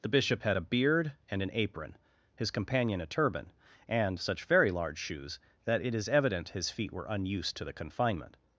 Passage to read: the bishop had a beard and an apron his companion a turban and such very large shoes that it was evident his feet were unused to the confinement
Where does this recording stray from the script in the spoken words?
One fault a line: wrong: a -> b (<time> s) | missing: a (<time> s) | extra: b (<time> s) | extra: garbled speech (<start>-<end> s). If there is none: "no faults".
wrong: was -> is (5.9 s)